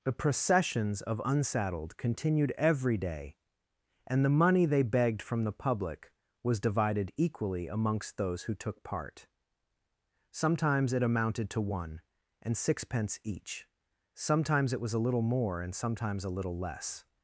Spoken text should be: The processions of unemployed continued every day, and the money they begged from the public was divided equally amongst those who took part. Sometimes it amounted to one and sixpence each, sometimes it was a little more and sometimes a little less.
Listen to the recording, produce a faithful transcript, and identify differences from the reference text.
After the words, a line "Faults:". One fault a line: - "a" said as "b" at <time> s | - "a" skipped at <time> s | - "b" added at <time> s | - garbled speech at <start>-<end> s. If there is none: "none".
The processions of unsaddled continued every day, and the money they begged from the public was divided equally amongst those who took part. Sometimes it amounted to one and sixpence each, sometimes it was a little more and sometimes a little less.
Faults:
- "unemployed" said as "unsaddled" at 1.3 s